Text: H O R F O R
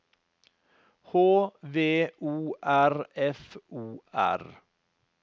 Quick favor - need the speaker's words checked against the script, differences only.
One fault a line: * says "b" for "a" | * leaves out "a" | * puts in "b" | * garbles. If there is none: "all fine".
* puts in "V"